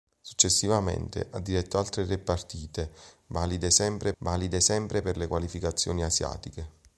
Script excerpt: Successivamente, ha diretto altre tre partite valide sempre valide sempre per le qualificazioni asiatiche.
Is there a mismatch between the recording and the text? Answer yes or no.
no